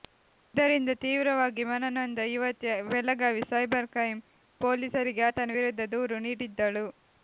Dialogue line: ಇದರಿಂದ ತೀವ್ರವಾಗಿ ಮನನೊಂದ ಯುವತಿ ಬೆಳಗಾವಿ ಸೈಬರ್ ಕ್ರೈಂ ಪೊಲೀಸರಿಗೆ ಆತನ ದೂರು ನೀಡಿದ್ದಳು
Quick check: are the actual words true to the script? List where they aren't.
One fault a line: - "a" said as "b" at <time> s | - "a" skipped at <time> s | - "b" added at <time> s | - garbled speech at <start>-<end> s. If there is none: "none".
- "ವಿರುದ್ಧ" added at 5.6 s